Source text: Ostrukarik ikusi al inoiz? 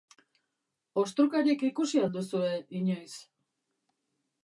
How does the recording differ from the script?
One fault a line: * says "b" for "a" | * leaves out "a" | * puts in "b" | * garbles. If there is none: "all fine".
* puts in "duzue"